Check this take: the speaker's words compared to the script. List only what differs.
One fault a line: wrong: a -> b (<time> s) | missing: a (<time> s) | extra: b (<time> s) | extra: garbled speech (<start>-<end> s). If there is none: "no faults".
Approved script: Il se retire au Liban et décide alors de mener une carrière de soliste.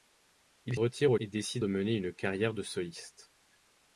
missing: se (0.8 s)
missing: Liban (1.1 s)
missing: alors (1.6 s)